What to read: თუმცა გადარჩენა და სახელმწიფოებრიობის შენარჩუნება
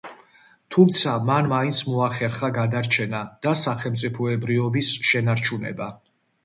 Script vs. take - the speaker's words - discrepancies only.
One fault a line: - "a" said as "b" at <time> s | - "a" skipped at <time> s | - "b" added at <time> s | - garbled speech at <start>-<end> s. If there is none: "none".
- "მან მაინც მოახერხა" added at 1.3 s